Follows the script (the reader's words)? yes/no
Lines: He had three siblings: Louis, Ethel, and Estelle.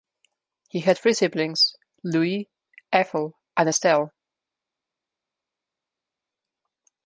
yes